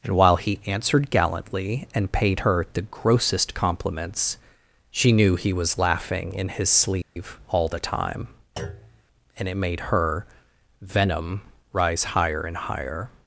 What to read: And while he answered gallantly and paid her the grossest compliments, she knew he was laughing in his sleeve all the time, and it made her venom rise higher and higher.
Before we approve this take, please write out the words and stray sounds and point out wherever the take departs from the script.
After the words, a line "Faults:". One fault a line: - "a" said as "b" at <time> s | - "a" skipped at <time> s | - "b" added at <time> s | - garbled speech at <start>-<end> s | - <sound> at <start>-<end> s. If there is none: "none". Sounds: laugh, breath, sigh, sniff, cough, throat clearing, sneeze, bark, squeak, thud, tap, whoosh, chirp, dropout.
And while he answered gallantly and paid her the grossest compliments, she knew he was laughing in his sleeve all the time, and it made her venom rise higher and higher.
Faults:
- dropout at 7.0-7.2 s
- thud at 8.6-9.0 s